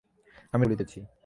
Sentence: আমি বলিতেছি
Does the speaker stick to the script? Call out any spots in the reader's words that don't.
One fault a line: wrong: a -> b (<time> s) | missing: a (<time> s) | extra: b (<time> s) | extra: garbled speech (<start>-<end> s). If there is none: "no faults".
no faults